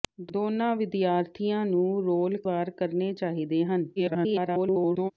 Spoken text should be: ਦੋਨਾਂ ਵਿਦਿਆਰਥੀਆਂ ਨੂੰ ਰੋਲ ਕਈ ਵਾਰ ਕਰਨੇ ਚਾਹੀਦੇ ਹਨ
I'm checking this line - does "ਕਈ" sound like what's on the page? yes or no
no